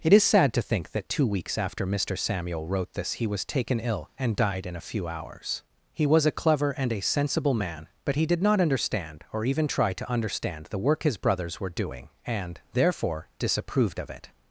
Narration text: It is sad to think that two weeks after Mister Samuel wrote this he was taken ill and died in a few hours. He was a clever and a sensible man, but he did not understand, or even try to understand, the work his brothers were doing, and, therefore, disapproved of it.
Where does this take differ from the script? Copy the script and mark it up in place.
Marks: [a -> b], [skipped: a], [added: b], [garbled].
It is sad to think that two weeks after Mister Samuel wrote this he was taken ill and died in a few hours. He was a clever and a sensible man, but he did not understand, or even try to understand, the work his brothers were doing, and, therefore, disapproved of it.